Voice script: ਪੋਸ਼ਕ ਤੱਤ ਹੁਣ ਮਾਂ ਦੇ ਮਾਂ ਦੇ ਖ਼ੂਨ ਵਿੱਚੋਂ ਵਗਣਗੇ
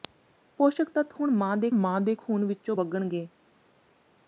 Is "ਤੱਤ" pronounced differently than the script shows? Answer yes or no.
no